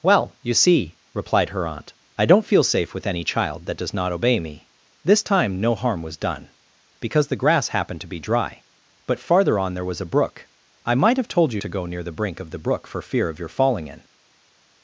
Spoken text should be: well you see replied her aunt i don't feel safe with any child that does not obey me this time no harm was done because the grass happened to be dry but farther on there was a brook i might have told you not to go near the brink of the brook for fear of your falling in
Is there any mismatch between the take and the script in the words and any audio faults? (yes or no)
yes